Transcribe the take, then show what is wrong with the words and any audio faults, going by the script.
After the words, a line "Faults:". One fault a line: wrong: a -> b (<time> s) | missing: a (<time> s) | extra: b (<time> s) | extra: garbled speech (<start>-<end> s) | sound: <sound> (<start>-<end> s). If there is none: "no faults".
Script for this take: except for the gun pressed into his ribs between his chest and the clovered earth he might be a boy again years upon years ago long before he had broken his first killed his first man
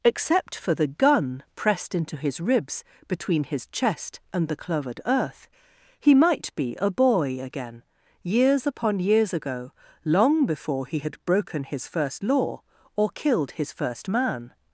except for the gun pressed into his ribs between his chest and the clovered earth he might be a boy again years upon years ago long before he had broken his first law or killed his first man
Faults:
extra: law or (12.2 s)